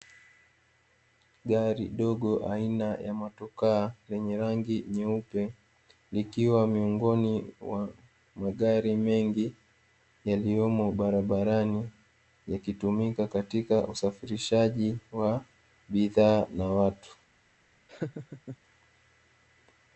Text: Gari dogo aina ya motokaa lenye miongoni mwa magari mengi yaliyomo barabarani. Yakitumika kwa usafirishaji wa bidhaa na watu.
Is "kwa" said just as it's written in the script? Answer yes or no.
no